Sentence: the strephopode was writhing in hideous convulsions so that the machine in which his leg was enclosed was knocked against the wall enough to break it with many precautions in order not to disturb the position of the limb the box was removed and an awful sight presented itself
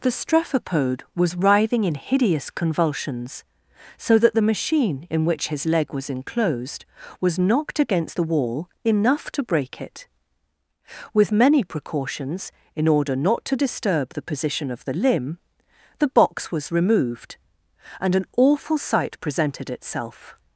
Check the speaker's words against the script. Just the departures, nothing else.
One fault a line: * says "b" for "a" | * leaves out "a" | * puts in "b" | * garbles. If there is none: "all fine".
all fine